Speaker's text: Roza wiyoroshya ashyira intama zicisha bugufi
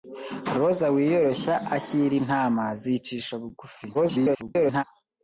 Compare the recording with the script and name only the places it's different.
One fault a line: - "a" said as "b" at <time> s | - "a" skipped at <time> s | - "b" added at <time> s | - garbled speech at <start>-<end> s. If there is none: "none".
- garbled speech at 3.9-4.8 s